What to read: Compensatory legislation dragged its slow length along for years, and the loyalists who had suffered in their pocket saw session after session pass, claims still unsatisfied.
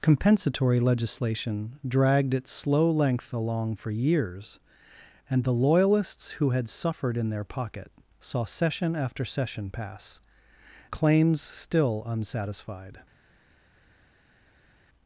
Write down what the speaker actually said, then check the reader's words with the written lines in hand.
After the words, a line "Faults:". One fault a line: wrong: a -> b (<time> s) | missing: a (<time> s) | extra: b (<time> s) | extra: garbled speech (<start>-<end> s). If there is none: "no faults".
Compensatory legislation dragged its slow length along for years, and the loyalists who had suffered in their pocket saw session after session pass, claims still unsatisfied.
Faults:
no faults